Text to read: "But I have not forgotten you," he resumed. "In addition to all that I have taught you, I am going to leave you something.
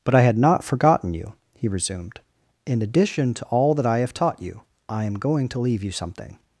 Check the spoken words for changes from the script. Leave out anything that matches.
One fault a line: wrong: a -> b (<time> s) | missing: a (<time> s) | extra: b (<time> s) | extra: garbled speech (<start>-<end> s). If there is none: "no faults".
wrong: have -> had (0.2 s)